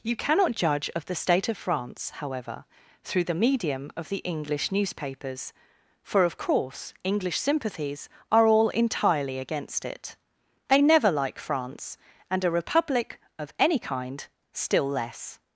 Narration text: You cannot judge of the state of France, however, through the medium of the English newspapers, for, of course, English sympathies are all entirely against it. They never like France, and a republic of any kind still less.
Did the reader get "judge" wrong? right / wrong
right